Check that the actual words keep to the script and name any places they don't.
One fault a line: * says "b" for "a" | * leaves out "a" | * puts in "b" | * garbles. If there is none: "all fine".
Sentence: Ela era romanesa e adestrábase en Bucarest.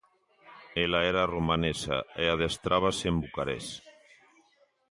all fine